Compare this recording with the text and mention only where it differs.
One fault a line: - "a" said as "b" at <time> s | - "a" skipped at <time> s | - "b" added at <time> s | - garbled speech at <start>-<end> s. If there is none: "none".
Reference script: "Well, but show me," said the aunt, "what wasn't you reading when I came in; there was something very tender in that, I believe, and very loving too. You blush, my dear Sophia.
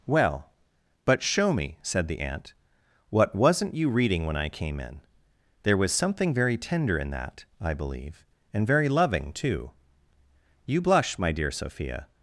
none